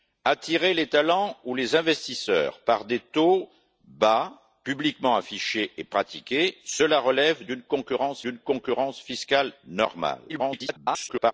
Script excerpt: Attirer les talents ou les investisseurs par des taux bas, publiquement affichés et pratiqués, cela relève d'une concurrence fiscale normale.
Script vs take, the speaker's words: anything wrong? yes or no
yes